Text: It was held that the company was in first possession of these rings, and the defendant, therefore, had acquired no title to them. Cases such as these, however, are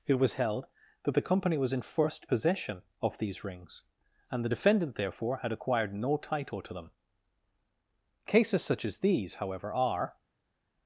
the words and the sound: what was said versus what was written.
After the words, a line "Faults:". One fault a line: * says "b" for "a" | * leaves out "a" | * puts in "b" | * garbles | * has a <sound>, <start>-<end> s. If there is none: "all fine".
It was held that the company was in first possession of these rings, and the defendant, therefore, had acquired no title to them. Cases such as these, however, are
Faults:
all fine